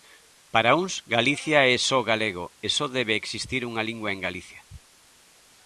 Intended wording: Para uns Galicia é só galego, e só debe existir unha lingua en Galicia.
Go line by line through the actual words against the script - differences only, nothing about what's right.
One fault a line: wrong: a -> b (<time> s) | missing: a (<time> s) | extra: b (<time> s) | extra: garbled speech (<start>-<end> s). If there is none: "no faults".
no faults